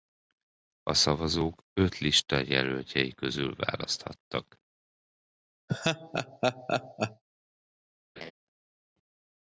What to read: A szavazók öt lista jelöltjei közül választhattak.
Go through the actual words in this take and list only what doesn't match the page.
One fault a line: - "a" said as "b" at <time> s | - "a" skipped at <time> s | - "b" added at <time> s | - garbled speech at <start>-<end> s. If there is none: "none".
none